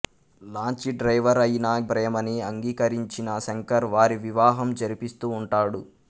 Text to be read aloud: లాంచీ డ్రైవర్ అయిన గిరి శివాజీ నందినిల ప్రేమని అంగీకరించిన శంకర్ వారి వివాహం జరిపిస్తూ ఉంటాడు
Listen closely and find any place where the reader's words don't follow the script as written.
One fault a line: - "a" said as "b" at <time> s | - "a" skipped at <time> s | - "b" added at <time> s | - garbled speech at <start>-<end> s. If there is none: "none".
- "గిరి శివాజీ నందినిల" skipped at 1.7 s